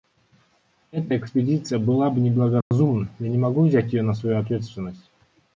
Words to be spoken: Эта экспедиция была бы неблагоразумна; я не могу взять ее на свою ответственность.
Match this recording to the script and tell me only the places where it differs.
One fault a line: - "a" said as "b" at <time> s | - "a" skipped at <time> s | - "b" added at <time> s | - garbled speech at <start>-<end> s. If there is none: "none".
none